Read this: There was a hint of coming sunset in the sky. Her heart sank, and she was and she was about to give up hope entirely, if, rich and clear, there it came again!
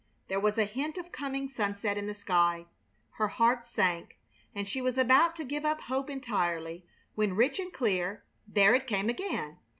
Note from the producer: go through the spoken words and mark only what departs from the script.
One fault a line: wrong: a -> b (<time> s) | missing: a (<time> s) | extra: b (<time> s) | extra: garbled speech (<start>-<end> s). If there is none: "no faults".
missing: and she was (5.0 s)
wrong: if -> when (7.1 s)